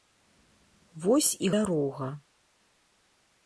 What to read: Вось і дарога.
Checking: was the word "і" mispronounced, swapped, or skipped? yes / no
no